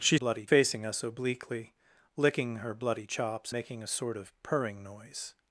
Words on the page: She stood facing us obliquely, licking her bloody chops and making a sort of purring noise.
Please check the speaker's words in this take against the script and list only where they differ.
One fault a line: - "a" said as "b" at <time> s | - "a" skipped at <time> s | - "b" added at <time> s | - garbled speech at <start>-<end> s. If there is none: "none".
- "stood" said as "bloody" at 0.1 s
- "and" skipped at 3.5 s